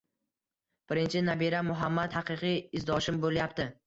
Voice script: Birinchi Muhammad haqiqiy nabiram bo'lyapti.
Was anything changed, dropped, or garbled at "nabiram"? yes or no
yes